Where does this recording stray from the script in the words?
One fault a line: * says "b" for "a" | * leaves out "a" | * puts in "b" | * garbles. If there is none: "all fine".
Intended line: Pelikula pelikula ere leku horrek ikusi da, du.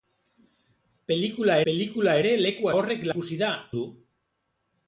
all fine